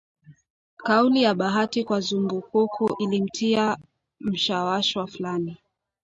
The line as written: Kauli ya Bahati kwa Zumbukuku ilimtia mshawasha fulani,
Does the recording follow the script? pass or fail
pass